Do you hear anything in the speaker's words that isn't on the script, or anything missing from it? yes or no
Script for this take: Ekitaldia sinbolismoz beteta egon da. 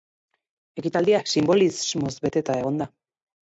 no